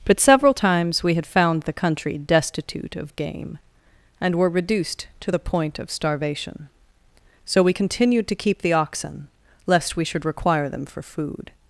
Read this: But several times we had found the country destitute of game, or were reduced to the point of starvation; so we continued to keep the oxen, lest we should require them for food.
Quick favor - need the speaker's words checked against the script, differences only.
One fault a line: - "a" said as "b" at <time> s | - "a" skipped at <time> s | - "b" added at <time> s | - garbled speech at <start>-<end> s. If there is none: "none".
- "or" said as "and" at 4.2 s